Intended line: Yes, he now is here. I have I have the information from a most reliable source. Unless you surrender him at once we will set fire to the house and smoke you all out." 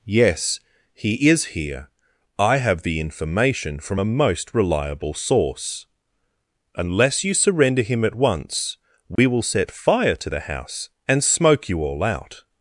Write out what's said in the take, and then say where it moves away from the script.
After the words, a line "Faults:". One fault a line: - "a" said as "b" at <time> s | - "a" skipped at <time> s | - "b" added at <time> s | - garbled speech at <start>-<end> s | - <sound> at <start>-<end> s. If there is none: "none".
Yes, he is here. I have the information from a most reliable source. Unless you surrender him at once we will set fire to the house and smoke you all out."
Faults:
- "now" skipped at 1.3 s
- "I have" skipped at 2.8 s
- dropout at 9.2-9.2 s